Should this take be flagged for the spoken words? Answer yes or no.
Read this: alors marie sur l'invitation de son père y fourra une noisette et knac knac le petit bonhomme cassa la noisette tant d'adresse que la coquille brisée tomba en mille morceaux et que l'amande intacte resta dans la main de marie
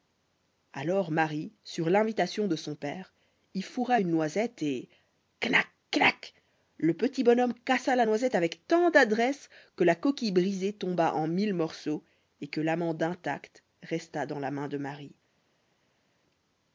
yes